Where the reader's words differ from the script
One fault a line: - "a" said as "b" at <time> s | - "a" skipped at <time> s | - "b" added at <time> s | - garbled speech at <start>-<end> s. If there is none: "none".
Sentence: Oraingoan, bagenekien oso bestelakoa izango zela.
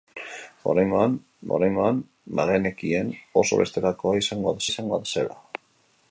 - "oraingoan" added at 1.6 s
- "izango" added at 4.7 s